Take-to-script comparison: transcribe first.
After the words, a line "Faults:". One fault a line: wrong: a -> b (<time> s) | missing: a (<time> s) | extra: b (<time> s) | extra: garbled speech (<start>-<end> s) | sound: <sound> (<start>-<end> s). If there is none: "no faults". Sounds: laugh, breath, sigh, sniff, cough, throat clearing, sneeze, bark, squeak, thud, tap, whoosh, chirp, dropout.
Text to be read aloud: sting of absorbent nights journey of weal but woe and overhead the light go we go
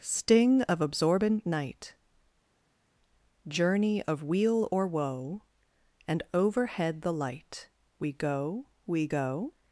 sting of absorbent night journey of weal or woe and overhead the light we go we go
Faults:
wrong: nights -> night (1.4 s)
wrong: but -> or (4.7 s)
extra: we (8.0 s)